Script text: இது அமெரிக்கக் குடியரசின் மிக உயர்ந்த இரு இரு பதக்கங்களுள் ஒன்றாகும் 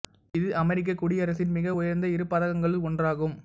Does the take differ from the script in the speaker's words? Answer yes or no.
yes